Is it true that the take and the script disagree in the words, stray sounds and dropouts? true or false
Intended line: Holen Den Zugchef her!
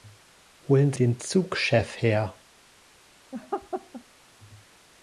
true